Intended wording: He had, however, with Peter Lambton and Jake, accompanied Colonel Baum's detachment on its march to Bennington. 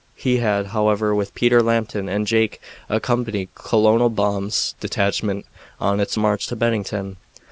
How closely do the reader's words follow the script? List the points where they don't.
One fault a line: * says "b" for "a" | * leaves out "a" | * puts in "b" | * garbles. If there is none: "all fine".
all fine